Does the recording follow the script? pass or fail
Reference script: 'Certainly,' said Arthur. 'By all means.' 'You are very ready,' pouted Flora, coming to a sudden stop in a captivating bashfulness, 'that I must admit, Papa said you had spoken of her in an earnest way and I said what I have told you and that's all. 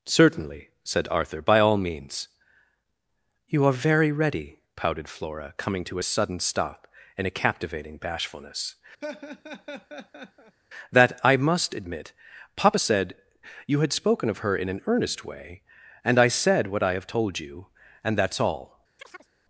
pass